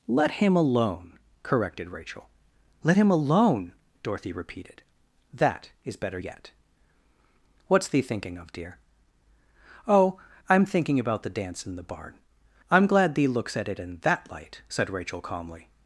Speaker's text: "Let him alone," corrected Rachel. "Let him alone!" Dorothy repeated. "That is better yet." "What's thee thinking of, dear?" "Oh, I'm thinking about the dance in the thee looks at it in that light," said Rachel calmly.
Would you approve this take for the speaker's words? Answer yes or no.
no